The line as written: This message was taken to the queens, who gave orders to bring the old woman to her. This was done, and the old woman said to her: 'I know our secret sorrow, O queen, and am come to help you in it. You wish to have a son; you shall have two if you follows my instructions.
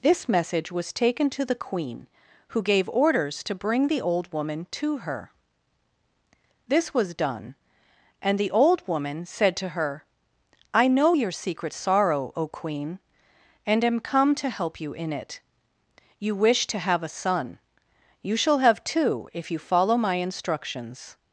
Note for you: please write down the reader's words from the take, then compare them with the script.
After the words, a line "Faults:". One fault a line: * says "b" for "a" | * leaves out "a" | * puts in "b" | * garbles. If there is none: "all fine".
This message was taken to the queen, who gave orders to bring the old woman to her. This was done, and the old woman said to her: 'I know your secret sorrow, O queen, and am come to help you in it. You wish to have a son; you shall have two if you follow my instructions.
Faults:
* says "queen" for "queens"
* says "your" for "our"
* says "follow" for "follows"